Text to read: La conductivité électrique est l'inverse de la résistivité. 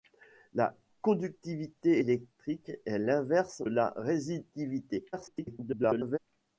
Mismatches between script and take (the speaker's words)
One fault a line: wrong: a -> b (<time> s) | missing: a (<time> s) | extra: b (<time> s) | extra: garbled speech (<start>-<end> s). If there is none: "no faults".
missing: de (3.6 s)
extra: garbled speech (5.1-6.2 s)